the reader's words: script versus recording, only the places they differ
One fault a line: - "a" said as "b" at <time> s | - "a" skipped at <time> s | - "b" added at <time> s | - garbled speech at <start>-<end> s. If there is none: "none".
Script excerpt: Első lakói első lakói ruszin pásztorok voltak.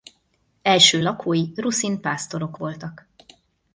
- "első lakói" skipped at 1.5 s